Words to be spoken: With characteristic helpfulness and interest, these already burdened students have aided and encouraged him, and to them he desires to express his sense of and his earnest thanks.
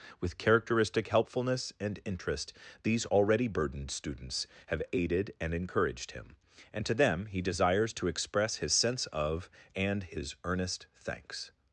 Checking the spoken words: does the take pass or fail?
pass